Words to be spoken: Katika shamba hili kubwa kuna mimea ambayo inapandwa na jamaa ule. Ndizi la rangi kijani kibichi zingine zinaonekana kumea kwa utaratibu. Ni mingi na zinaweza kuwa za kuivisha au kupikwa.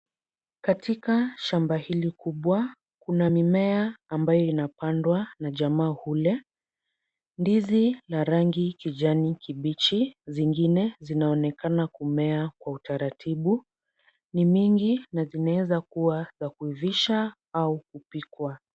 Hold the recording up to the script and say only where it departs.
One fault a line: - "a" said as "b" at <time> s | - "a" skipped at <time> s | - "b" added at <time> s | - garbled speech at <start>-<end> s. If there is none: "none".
none